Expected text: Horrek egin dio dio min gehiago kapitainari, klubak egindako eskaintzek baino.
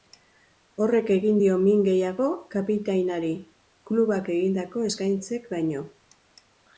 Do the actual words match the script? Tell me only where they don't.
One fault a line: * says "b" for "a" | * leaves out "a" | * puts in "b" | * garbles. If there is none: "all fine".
* leaves out "dio"